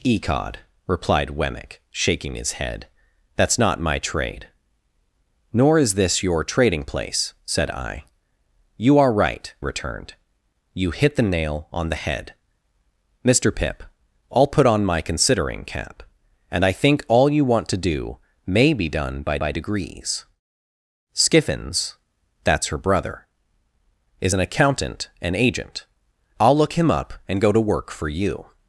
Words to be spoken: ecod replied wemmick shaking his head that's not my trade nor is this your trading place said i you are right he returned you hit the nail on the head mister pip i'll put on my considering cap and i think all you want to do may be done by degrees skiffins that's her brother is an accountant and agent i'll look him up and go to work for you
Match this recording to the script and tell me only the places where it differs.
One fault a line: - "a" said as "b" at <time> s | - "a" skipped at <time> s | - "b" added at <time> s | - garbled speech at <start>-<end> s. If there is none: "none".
- "he" skipped at 9.5 s
- "by" added at 19.4 s